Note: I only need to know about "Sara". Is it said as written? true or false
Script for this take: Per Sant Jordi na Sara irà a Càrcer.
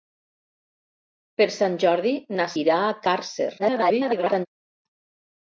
false